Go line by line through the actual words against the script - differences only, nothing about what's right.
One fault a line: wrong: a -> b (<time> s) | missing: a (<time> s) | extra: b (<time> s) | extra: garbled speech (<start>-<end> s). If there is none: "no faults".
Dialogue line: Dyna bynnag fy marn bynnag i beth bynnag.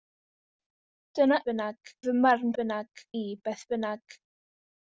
no faults